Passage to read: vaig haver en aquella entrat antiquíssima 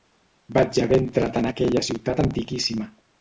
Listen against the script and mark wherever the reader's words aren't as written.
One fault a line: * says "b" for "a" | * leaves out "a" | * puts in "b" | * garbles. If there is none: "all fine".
* puts in "entrat"
* says "ciutat" for "entrat"